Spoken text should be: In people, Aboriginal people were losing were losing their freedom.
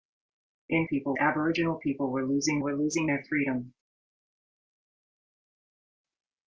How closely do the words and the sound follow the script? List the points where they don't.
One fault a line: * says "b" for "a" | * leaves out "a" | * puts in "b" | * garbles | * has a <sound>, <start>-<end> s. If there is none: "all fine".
all fine